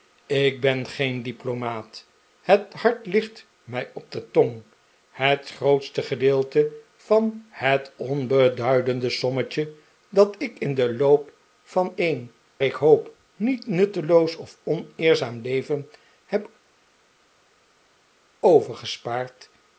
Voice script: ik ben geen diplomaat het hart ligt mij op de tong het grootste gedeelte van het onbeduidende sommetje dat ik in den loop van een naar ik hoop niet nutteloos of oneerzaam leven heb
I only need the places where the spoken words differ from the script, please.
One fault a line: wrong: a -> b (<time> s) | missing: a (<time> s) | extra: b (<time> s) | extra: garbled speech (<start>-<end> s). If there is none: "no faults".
missing: naar (12.3 s)